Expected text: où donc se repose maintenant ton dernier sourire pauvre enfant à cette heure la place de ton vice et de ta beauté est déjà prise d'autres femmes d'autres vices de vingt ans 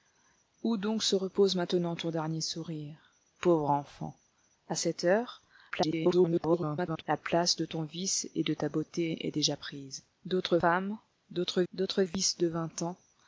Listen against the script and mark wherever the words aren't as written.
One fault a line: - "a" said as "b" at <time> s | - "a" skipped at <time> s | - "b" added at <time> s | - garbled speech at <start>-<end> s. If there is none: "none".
- garbled speech at 5.7-7.0 s
- "d'autres" added at 11.7 s